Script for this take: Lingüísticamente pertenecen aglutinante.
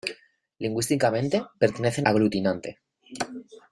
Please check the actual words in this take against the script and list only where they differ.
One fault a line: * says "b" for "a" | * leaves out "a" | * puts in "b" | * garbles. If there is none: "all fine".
all fine